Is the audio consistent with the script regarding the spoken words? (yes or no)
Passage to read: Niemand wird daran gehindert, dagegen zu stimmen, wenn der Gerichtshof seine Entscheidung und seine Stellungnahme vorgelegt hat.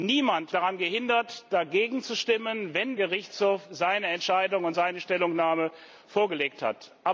no